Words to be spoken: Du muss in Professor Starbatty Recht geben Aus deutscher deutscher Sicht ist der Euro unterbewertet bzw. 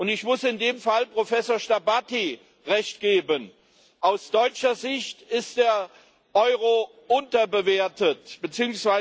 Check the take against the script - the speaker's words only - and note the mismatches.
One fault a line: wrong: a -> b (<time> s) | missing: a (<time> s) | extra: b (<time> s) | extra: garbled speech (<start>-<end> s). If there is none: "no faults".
wrong: Du -> Ich (0.1 s)
extra: dem Fall (0.6 s)
missing: deutscher (4.8 s)